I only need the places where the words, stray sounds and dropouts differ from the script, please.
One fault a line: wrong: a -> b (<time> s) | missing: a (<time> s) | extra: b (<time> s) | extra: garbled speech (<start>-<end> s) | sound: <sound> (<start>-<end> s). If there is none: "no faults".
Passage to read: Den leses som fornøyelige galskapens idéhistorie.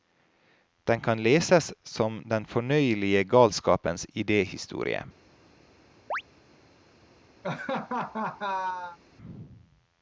extra: kan (1.0 s)
extra: den (2.3 s)
sound: chirp (6.1-6.2 s)
sound: laugh (7.4-9.0 s)